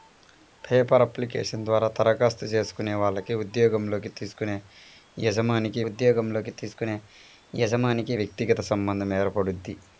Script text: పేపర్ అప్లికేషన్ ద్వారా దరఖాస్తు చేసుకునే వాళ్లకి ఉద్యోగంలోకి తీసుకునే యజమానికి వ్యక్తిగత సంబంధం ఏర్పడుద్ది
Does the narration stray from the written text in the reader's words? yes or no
yes